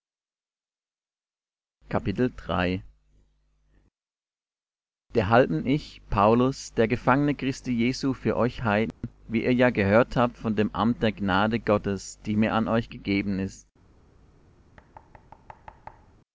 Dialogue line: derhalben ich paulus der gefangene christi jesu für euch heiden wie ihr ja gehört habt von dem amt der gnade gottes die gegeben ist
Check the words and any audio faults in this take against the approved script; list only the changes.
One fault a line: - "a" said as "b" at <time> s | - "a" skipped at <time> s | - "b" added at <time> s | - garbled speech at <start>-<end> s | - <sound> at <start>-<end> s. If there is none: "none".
- dropout at 8.9-9.0 s
- "mir an euch" added at 12.4 s
- thud at 14.8-16.2 s